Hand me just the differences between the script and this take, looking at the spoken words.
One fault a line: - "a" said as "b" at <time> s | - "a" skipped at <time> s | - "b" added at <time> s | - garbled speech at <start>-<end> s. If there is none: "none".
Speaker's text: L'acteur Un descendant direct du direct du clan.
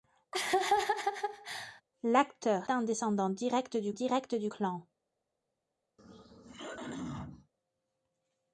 none